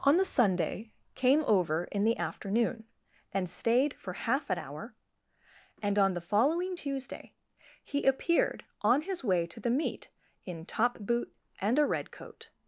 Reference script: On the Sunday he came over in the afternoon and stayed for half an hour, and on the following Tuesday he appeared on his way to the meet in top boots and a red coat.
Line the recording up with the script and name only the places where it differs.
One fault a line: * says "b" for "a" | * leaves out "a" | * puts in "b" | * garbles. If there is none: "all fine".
* leaves out "he"
* says "boot" for "boots"